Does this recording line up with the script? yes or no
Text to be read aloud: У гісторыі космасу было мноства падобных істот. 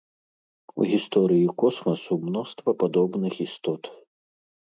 no